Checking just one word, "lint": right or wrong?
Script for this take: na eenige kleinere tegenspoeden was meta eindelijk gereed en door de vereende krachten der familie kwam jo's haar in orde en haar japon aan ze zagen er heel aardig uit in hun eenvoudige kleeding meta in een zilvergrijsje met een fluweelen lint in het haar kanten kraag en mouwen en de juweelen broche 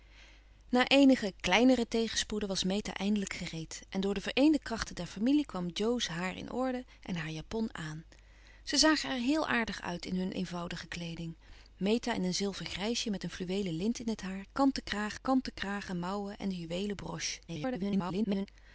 right